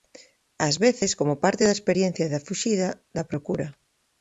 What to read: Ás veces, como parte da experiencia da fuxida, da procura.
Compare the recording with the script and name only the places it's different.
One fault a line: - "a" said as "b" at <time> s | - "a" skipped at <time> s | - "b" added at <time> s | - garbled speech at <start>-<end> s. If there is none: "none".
none